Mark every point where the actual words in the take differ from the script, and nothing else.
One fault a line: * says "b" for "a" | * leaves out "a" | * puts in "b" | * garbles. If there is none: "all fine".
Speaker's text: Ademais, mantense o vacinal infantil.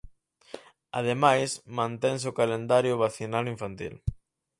* puts in "calendario"